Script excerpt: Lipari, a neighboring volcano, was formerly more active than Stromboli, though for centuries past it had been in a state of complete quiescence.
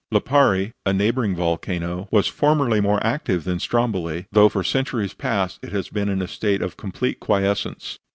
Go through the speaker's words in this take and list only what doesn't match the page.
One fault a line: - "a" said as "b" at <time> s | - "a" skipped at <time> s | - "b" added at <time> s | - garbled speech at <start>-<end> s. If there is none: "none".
- "had" said as "has" at 5.7 s